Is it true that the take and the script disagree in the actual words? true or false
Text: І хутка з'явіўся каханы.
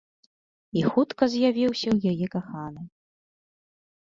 true